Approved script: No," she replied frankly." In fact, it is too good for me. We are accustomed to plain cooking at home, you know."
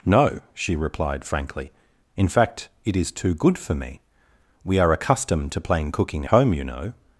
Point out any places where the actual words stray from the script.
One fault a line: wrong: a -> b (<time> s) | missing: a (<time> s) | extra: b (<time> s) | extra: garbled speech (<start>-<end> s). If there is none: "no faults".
missing: at (6.2 s)